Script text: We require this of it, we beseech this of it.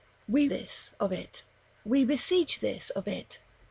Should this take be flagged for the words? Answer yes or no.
yes